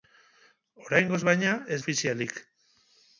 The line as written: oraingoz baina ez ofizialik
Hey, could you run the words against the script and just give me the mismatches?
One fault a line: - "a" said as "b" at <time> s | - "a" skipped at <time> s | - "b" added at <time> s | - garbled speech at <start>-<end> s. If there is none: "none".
none